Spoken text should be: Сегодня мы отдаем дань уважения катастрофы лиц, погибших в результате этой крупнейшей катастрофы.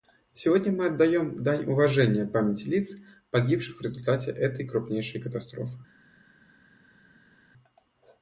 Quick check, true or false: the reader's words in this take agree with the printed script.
false